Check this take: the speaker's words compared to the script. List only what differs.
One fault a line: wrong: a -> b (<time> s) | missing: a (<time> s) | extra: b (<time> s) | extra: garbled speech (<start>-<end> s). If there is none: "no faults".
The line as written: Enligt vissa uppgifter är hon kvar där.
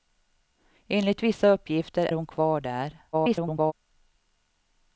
missing: är (2.1 s)
extra: garbled speech (3.1-3.7 s)